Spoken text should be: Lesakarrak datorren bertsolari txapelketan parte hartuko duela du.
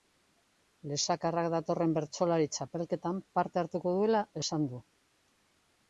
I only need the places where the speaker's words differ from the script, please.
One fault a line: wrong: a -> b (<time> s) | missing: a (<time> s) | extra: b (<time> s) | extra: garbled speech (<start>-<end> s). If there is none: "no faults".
extra: esan (4.4 s)